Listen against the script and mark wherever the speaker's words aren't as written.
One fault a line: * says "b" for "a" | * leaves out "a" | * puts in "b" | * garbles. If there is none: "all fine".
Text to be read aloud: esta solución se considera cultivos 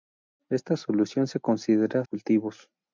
all fine